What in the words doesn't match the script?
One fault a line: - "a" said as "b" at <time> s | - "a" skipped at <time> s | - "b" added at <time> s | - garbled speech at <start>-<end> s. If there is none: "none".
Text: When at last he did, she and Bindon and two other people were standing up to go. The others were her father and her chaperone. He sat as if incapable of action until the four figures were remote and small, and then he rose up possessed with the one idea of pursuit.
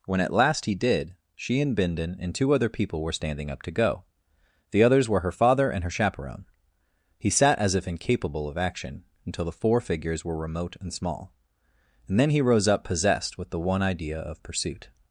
none